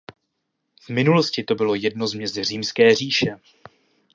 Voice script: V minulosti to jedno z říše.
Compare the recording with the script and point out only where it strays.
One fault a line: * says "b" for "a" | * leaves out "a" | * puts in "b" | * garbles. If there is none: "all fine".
* puts in "bylo"
* puts in "měst Římské"